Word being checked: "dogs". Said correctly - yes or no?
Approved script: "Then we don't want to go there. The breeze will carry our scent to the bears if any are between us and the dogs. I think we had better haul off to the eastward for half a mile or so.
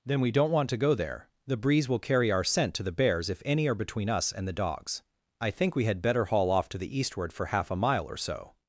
yes